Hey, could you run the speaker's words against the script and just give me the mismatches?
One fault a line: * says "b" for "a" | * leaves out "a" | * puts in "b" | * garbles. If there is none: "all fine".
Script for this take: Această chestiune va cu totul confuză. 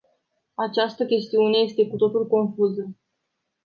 * says "este" for "va"